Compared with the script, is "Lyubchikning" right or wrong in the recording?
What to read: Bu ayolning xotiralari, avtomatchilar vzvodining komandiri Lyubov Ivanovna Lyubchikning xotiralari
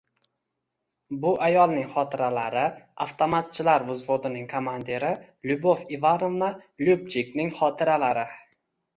right